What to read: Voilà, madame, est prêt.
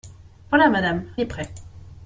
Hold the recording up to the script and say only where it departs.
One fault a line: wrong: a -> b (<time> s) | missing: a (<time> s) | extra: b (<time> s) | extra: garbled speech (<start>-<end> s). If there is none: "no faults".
no faults